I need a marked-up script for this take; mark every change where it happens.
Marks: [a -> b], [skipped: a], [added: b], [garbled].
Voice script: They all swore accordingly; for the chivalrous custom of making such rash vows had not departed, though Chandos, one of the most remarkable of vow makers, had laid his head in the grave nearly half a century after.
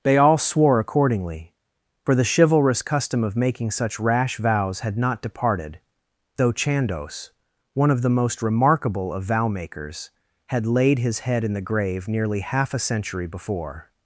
They all swore accordingly; for the chivalrous custom of making such rash vows had not departed, though Chandos, one of the most remarkable of vow makers, had laid his head in the grave nearly half a century [after. -> before]